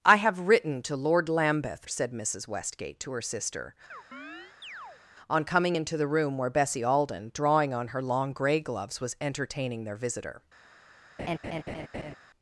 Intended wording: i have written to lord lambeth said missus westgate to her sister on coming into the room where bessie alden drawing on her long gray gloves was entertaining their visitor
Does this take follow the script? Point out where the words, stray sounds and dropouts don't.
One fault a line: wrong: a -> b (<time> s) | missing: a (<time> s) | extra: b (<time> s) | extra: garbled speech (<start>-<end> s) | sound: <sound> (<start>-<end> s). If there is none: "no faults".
sound: chirp (3.9-5.0 s)
sound: laugh (11.2-12.2 s)